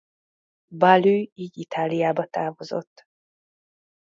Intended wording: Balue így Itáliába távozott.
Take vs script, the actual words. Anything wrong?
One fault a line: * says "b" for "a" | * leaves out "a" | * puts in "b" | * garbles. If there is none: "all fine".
all fine